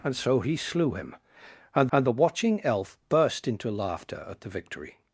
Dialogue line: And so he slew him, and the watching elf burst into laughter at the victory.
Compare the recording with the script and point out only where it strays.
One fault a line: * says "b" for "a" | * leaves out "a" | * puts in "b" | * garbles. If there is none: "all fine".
* puts in "and"